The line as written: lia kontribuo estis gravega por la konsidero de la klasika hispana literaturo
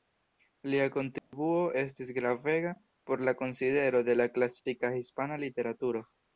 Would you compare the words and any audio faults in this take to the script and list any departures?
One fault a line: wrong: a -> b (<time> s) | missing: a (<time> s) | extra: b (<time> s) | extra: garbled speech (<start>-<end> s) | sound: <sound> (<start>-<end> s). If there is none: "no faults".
sound: dropout (1.2-1.3 s)